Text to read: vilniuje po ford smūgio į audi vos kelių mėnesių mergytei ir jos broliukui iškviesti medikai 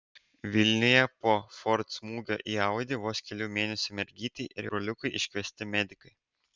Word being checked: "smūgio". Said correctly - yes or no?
yes